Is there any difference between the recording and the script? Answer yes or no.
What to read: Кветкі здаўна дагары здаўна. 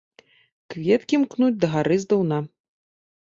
yes